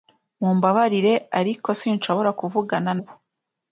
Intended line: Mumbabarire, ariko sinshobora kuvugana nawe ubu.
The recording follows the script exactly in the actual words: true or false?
false